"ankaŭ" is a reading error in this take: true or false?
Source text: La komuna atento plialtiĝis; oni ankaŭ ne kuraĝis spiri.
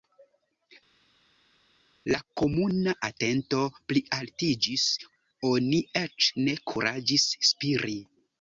true